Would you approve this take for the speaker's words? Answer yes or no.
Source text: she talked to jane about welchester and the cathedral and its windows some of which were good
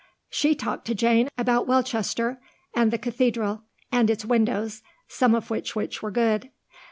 no